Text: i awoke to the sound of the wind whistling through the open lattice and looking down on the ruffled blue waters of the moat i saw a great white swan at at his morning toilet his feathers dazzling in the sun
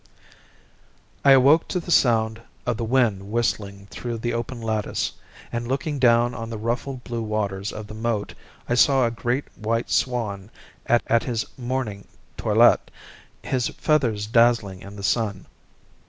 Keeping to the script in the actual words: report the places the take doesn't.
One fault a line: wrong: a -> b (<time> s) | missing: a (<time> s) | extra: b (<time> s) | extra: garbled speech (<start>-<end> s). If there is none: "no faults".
no faults